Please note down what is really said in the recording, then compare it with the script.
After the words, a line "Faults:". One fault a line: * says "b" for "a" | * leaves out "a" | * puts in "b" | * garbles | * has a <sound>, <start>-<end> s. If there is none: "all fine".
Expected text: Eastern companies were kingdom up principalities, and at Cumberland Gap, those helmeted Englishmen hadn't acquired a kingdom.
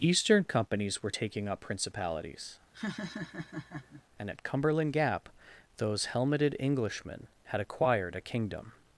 Eastern companies were taking up principalities, and at Cumberland Gap, those helmeted Englishmen had acquired a kingdom.
Faults:
* says "taking" for "kingdom"
* has a laugh, 2.7-4.0 s
* says "had" for "hadn't"